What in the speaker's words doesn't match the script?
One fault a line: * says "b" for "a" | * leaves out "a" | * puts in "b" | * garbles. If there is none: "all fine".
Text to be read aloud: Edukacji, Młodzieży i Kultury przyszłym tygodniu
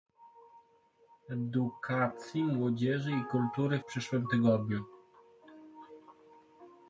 all fine